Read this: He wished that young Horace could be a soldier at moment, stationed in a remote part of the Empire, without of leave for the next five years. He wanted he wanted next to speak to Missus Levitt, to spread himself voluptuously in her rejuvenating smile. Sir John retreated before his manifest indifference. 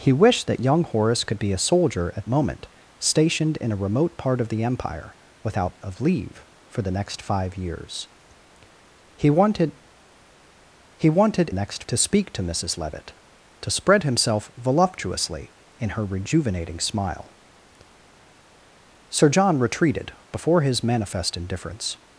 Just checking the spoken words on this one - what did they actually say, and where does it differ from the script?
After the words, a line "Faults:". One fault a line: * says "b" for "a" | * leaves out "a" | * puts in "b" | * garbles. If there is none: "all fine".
He wished that young Horace could be a soldier at moment, stationed in a remote part of the Empire, without of leave for the next five years. He wanted he wanted next to speak to Missus Levitt, to spread himself voluptuously in her rejuvenating smile. Sir John retreated before his manifest indifference.
Faults:
all fine